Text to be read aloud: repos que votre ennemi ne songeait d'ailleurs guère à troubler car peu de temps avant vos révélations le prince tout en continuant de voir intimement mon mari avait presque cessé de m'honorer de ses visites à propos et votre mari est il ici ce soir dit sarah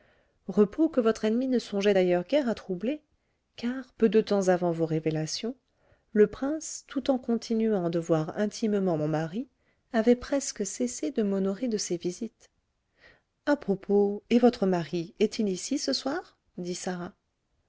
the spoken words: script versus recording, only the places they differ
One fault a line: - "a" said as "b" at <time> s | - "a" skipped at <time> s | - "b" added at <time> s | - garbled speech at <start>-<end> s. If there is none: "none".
none